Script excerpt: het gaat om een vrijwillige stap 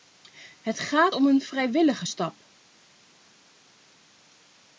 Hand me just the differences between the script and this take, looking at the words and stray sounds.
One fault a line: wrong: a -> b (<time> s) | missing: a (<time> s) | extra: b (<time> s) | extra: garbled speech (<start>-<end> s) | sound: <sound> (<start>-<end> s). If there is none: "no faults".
no faults